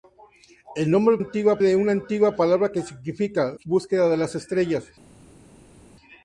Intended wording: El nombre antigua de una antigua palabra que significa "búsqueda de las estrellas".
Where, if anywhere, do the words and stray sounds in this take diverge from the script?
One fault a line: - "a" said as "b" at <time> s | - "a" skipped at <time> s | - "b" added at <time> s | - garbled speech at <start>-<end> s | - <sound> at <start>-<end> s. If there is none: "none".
none